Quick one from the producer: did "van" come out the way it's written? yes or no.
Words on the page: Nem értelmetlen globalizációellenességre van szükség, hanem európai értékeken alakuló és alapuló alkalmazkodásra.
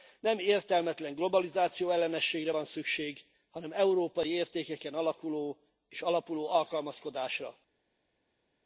yes